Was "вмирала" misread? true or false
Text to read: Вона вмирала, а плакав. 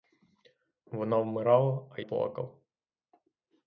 false